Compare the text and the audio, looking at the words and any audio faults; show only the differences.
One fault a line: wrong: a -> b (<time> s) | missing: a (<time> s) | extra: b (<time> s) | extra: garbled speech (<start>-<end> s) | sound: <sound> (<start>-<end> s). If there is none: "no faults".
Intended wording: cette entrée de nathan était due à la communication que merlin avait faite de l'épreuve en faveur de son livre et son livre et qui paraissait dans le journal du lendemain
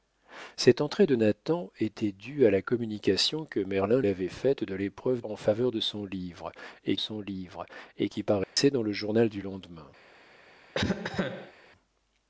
sound: dropout (8.4-8.6 s)
sound: cough (10.7-11.5 s)